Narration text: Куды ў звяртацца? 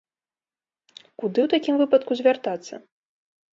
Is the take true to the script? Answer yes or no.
no